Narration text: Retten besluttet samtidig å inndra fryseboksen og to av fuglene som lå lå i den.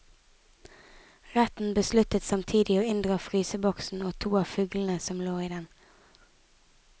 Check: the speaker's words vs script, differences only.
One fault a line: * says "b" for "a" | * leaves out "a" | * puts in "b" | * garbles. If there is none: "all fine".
* leaves out "lå"